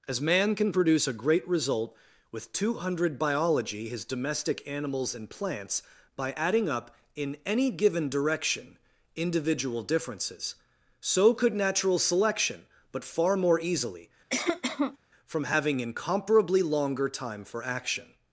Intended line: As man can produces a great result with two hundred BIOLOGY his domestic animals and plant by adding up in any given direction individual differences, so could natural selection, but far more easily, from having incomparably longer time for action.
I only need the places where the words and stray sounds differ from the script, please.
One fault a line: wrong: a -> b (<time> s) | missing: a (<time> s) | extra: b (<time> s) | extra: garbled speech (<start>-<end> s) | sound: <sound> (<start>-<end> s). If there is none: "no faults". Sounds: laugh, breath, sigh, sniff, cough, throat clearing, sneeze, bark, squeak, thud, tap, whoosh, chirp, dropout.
wrong: produces -> produce (0.7 s)
wrong: plant -> plants (5.3 s)
sound: cough (14.3-15.0 s)